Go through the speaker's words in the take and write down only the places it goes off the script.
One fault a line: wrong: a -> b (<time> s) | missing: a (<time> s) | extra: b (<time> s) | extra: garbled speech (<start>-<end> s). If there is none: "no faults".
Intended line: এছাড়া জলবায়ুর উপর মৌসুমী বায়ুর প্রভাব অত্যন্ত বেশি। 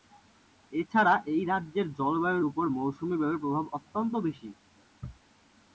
extra: এই রাজ্যের (1.2 s)